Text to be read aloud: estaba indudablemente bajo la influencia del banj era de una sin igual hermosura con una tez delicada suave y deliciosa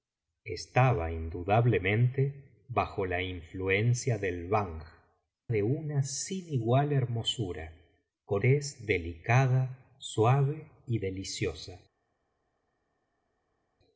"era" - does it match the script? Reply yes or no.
no